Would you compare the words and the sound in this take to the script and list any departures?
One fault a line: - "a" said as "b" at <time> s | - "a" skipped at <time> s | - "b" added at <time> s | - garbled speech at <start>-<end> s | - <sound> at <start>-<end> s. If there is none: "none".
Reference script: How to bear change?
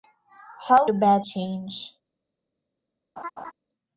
- laugh at 3.2-3.5 s